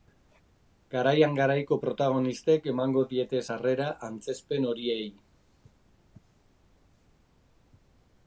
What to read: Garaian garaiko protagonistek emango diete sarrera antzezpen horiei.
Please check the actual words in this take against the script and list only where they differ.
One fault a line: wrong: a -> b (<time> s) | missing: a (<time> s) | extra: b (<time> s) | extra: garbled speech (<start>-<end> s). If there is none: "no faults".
no faults